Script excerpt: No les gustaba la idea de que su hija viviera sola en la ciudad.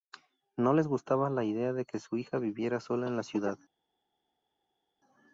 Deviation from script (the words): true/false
false